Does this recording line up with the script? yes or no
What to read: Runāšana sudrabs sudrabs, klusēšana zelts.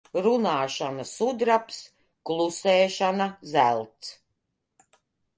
no